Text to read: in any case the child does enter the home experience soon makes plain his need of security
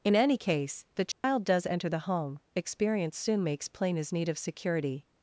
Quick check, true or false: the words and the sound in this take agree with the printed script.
false